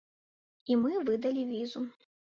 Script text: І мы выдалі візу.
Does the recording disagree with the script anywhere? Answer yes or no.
no